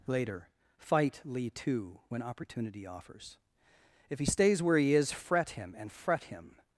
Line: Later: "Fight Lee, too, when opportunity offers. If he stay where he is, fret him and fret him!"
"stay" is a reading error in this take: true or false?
true